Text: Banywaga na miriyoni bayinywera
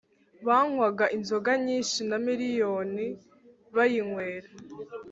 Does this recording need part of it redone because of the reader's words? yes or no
yes